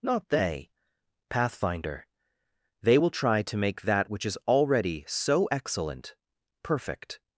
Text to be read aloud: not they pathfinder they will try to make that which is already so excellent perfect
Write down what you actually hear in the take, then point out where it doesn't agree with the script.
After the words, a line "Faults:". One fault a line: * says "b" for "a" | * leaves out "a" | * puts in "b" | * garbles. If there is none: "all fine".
not they pathfinder they will try to make that which is already so excellent perfect
Faults:
all fine